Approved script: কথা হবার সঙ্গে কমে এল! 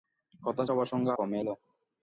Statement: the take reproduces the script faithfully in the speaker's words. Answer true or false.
true